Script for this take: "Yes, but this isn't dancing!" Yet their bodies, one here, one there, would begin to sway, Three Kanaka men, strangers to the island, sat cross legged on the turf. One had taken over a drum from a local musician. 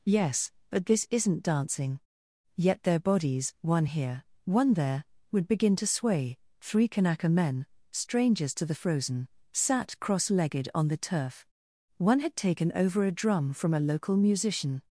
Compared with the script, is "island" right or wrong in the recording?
wrong